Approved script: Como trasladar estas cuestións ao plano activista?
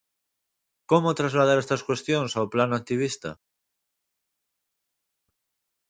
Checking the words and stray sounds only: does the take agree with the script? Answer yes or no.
yes